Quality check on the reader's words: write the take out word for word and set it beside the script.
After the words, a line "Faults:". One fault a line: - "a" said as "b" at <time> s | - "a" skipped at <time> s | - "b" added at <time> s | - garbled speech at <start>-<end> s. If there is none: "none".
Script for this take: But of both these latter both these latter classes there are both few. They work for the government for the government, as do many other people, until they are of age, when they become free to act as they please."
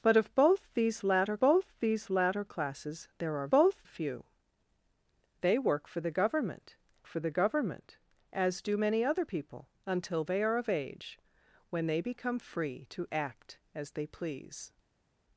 But of both these latter both these latter classes there are both few. They work for the government for the government, as do many other people, until they are of age, when they become free to act as they please."
Faults:
none